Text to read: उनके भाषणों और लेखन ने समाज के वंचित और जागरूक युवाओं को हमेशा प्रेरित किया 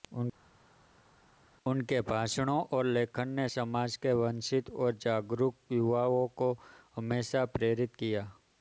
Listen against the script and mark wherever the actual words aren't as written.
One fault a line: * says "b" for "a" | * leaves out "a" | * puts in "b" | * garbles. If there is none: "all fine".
all fine